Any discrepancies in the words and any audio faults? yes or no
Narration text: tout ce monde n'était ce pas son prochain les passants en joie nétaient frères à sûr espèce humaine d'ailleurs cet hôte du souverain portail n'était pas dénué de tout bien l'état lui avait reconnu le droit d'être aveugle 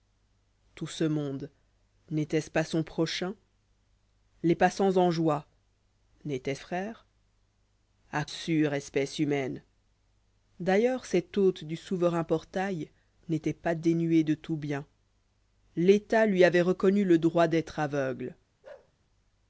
yes